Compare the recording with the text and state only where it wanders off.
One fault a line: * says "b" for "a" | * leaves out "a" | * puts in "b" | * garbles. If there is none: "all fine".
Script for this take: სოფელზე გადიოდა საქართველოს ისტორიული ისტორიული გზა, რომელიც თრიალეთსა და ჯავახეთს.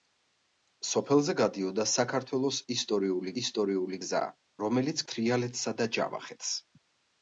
all fine